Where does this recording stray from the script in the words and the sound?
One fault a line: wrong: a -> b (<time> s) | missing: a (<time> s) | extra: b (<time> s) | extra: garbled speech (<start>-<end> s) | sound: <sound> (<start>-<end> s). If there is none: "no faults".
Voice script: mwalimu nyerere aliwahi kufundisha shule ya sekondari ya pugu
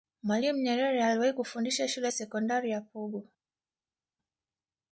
no faults